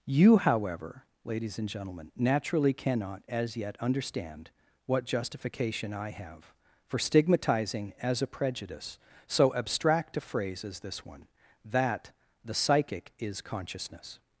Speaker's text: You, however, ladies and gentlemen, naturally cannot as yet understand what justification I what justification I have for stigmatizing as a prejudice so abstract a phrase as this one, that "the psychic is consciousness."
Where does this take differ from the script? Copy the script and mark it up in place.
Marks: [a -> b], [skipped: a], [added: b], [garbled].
You, however, ladies and gentlemen, naturally cannot as yet understand what justification I [skipped: what justification I] have for stigmatizing as a prejudice so abstract a phrase as this one, that "the psychic is consciousness."